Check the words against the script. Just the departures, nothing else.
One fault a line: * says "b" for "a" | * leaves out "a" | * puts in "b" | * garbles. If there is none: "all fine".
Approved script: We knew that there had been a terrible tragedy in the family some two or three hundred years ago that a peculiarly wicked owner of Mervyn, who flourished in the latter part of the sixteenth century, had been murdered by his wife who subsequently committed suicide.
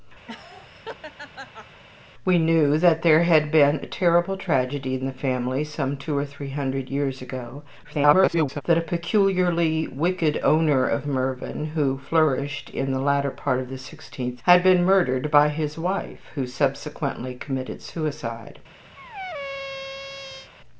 * garbles
* leaves out "century"